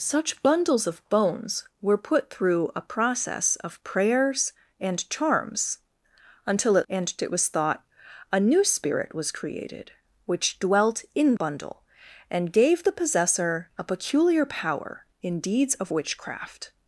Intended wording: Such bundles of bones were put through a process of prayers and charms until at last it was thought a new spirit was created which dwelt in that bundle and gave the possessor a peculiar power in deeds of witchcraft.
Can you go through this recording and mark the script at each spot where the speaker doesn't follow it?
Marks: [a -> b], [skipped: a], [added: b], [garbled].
Such bundles of bones were put through a process of prayers and charms until at [last -> and] it was thought a new spirit was created which dwelt in [skipped: that] bundle and gave the possessor a peculiar power in deeds of witchcraft.